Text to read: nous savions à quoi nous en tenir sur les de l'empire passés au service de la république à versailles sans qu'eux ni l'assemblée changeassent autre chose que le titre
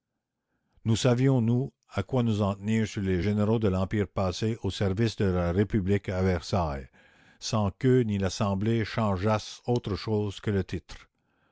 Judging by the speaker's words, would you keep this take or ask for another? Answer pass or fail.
fail